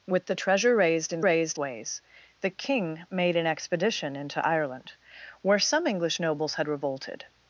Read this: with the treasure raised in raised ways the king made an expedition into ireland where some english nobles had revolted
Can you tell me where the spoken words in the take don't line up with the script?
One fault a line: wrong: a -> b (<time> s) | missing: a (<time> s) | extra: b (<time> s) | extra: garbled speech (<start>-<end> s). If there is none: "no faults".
no faults